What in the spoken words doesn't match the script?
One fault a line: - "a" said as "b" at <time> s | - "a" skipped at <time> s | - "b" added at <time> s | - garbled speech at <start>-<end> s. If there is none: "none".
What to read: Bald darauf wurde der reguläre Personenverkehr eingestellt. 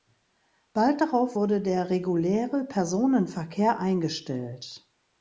none